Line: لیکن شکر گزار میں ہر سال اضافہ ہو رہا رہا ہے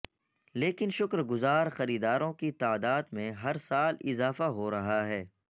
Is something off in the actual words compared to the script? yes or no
yes